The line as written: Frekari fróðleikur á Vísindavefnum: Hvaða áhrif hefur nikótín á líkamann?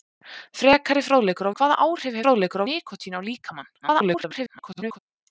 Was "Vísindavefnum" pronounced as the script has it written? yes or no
no